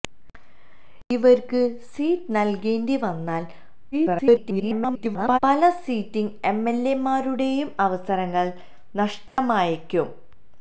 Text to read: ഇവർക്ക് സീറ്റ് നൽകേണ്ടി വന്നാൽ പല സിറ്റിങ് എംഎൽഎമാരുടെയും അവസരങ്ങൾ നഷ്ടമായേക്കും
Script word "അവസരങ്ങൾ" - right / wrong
right